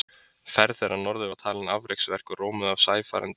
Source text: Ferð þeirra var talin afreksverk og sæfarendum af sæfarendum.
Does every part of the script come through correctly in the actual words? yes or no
no